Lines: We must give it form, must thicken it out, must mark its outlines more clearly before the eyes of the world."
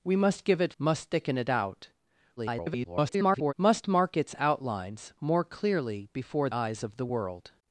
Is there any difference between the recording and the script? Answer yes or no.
yes